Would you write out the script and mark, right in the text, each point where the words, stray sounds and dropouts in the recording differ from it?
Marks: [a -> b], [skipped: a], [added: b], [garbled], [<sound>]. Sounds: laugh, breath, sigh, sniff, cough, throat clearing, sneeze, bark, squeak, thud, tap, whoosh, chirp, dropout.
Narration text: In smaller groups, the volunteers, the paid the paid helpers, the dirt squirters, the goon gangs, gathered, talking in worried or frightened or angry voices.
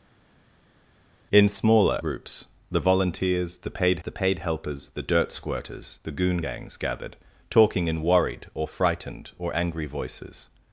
In smaller groups, the volunteers, the paid the paid helpers, the dirt squirters, the goon gangs, gathered, talking in worried or frightened or angry voices.